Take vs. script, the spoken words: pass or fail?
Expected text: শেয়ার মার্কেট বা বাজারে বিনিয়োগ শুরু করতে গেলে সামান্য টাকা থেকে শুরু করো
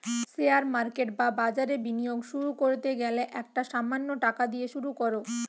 fail